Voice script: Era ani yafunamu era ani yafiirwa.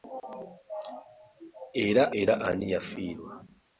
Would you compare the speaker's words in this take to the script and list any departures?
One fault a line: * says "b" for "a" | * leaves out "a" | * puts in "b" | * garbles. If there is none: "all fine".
* leaves out "ani yafunamu"